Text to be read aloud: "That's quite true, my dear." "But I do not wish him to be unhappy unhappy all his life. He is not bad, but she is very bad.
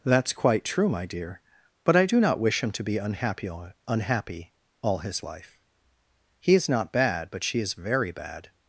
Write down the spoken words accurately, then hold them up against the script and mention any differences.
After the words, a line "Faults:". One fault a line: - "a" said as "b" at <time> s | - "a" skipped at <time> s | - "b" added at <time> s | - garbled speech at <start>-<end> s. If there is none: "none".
"That's quite true, my dear." "But I do not wish him to be unhappy unhappy all his life. He is not bad, but she is very bad.
Faults:
none